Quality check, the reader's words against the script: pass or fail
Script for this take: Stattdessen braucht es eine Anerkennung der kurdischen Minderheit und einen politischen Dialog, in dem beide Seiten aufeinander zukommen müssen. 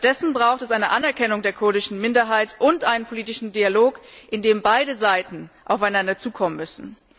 pass